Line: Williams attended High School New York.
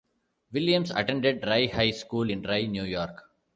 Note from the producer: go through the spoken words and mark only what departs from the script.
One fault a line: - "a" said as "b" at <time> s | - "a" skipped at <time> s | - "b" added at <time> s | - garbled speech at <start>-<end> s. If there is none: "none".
- "Rye" added at 1.4 s
- "in Rye" added at 2.3 s